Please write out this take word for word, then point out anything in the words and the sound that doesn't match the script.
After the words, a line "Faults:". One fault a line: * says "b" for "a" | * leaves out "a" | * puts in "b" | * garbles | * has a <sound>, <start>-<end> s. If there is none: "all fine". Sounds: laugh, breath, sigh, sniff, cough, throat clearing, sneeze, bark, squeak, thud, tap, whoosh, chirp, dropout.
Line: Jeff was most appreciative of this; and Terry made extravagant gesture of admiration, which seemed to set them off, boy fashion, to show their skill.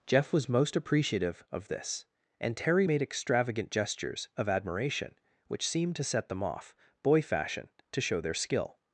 Jeff was most appreciative of this; and Terry made extravagant gestures of admiration, which seemed to set them off, boy fashion, to show their skill.
Faults:
* says "gestures" for "gesture"